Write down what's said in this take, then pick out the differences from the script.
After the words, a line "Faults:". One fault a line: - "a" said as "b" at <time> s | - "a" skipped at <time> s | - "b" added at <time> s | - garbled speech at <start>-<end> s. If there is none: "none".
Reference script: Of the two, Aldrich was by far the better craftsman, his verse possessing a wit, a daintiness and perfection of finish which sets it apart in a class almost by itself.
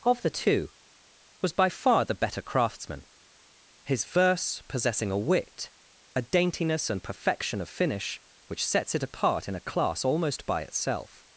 Of the two, was by far the better craftsman, his verse possessing a wit, a daintiness and perfection of finish which sets it apart in a class almost by itself.
Faults:
- "Aldrich" skipped at 0.7 s